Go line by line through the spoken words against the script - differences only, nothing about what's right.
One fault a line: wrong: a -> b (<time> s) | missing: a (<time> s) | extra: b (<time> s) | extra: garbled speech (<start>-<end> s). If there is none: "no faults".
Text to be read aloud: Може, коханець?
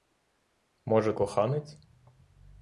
no faults